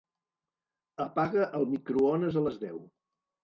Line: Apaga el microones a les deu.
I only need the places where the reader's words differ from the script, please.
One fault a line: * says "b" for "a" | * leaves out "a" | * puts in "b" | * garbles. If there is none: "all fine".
all fine